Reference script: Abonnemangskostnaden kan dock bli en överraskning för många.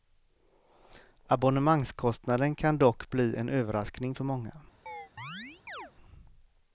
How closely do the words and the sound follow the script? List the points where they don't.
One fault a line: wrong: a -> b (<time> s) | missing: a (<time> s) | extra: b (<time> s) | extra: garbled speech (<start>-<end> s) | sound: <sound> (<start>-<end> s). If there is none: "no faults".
sound: chirp (4.9-5.9 s)